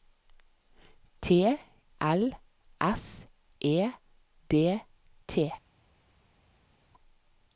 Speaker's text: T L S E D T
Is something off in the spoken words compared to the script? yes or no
no